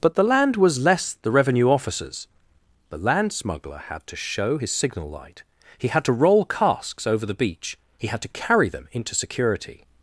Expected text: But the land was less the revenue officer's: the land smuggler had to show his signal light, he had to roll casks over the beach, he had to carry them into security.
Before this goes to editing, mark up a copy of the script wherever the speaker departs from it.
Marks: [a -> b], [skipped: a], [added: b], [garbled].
But the land was less the revenue officer's: the land smuggler had to show his signal light, he had to roll casks over the beach, he had to carry them into security.